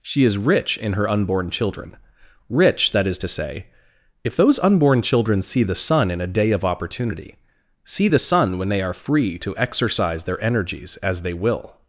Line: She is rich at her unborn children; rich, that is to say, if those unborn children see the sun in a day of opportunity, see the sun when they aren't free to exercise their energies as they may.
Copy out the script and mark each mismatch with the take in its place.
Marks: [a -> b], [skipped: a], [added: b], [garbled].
She is rich [at -> in] her unborn children; rich, that is to say, if those unborn children see the sun in a day of opportunity, see the sun when they [aren't -> are] free to exercise their energies as they [may. -> will]